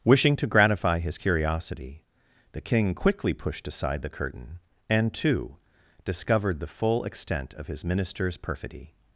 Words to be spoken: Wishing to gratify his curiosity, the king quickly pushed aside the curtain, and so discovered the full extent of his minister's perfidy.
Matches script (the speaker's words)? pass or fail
fail